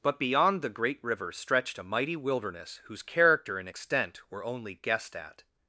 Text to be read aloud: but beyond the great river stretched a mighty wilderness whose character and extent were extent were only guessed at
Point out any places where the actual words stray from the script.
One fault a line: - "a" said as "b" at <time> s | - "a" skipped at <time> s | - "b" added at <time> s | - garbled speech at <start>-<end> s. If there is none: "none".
- "extent were" skipped at 4.4 s